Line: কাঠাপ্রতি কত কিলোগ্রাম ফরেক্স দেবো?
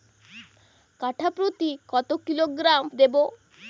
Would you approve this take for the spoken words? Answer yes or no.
no